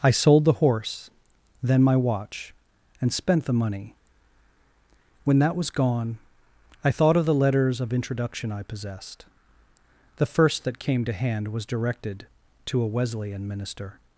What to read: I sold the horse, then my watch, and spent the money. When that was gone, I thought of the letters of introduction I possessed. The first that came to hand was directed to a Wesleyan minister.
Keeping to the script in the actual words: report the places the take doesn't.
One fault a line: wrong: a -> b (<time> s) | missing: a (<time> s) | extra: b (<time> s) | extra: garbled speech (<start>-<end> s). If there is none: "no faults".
no faults